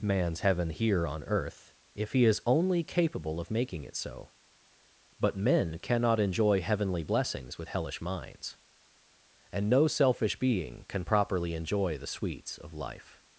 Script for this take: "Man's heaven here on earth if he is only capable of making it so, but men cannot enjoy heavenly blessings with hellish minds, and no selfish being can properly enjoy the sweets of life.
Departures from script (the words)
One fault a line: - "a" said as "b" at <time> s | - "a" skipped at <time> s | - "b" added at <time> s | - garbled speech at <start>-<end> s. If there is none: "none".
none